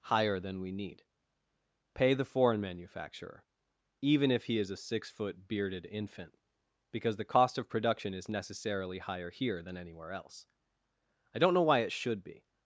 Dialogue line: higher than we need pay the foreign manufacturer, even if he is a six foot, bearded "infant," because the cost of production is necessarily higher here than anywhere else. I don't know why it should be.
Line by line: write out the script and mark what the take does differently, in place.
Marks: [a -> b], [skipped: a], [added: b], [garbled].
higher than we need pay the foreign manufacturer, even if he is a six foot, bearded "infant," because the cost of production is necessarily higher here than anywhere else. I don't know why it should be.